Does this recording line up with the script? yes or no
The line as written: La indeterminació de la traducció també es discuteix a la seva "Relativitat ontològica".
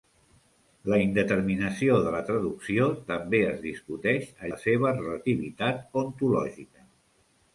yes